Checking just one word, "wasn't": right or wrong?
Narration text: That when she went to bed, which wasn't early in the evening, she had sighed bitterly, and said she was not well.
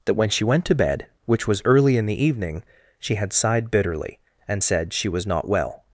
wrong